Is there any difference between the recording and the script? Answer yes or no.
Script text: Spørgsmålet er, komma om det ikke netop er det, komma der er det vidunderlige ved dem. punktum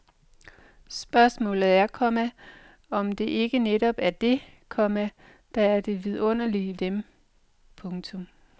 yes